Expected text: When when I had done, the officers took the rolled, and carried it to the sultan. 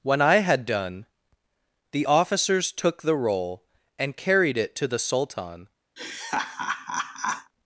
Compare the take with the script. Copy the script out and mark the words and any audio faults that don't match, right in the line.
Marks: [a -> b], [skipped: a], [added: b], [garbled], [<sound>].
When [skipped: when] I had done, the officers took the [rolled, -> roll] and carried it to the sultan. [laugh]